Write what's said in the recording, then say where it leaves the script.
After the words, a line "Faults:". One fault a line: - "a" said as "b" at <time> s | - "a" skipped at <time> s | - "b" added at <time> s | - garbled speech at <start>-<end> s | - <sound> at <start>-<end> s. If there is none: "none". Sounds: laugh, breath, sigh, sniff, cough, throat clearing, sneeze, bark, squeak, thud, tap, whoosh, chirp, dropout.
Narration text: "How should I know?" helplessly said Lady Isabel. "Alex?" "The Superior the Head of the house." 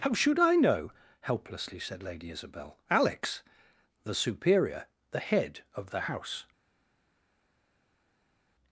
"How should I know?" helplessly said Lady Isabel. "Alex?" "The Superior the Head of the house."
Faults:
none